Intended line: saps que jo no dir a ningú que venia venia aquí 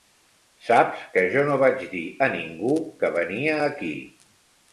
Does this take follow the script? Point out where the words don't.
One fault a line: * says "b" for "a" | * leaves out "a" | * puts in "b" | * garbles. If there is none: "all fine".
* puts in "vaig"
* leaves out "venia"